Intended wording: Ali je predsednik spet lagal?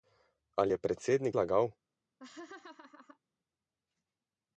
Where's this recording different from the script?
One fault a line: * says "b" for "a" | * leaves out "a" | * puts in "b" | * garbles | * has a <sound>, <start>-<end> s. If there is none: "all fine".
* leaves out "spet"
* has a laugh, 2.2-3.2 s